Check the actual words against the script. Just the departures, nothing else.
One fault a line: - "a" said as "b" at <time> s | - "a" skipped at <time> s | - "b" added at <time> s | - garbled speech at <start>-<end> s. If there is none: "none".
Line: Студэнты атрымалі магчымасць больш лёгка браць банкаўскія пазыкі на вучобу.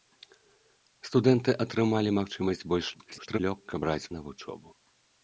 - garbled speech at 2.9-3.4 s
- "банкаўскія пазыкі" skipped at 4.1 s